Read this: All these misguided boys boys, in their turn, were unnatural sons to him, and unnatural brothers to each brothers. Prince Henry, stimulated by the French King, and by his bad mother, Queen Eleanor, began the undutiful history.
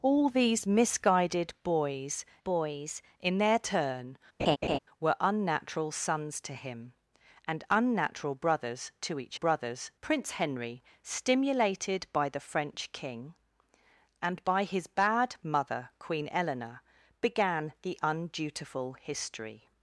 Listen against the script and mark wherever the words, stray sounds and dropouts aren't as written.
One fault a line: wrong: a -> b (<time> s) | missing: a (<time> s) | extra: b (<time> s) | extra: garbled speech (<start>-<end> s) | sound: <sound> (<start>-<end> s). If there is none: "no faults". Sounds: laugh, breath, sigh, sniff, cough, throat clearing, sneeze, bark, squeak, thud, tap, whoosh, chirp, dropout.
sound: laugh (4.4-4.8 s)